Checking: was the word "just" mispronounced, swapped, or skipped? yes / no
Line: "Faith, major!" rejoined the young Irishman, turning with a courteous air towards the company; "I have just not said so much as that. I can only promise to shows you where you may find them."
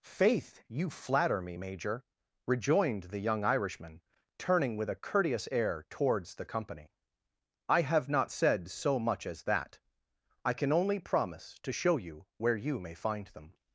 yes